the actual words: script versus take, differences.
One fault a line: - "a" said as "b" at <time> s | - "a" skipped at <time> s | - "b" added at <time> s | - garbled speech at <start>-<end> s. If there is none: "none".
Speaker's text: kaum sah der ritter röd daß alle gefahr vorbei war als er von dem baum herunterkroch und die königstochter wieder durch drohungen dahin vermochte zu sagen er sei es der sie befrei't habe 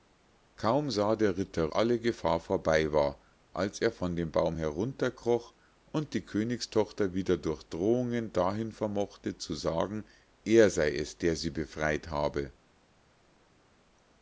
- "röd daß" skipped at 1.7 s